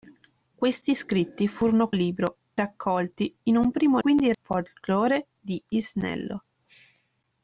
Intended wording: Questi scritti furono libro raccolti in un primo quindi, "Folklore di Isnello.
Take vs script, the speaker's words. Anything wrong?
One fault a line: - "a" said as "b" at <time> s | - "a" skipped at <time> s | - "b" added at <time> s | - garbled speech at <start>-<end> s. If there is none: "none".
none